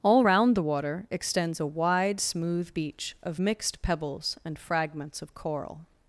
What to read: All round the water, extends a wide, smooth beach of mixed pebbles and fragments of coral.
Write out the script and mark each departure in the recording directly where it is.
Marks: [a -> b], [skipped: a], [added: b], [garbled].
All round the water, extends a wide, smooth beach of mixed pebbles and fragments of coral.